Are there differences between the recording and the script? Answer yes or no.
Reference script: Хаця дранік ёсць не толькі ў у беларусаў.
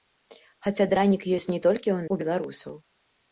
no